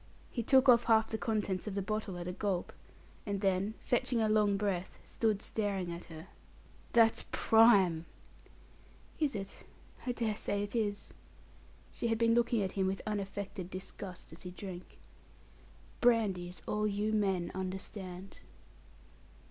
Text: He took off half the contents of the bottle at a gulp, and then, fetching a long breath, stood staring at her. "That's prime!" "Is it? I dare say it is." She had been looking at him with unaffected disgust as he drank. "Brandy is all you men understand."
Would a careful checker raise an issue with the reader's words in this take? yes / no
no